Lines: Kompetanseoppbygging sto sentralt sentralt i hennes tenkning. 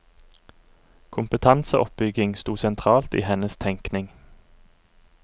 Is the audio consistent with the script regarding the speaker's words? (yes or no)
no